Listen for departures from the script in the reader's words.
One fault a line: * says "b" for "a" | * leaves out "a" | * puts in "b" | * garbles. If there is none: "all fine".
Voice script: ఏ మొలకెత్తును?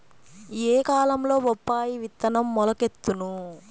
* puts in "కాలంలో బొప్పాయి విత్తనం"